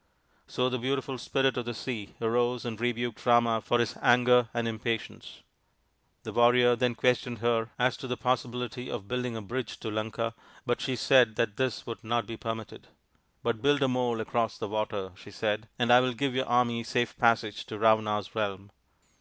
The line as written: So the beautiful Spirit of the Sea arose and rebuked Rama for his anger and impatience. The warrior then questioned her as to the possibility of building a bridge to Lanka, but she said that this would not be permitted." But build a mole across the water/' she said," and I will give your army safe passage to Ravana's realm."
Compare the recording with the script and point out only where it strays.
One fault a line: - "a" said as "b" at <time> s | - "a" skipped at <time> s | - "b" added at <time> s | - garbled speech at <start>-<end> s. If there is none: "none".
none